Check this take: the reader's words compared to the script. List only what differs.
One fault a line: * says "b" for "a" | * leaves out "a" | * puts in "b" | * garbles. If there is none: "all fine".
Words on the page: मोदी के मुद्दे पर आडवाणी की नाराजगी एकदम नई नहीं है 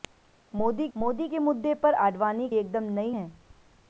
* puts in "मोदी"
* leaves out "की नाराजगी"
* leaves out "नहीं"